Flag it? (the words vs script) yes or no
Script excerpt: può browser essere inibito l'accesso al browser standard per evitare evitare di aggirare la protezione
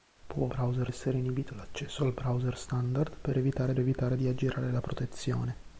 no